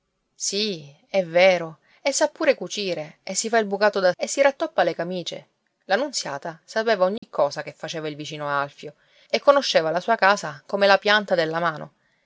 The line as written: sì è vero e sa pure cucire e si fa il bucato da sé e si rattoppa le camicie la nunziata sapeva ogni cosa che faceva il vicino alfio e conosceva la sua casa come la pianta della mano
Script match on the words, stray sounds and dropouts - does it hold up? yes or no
no